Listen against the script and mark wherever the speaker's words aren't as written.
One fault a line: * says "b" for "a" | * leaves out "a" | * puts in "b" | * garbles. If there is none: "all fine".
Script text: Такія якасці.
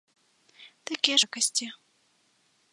all fine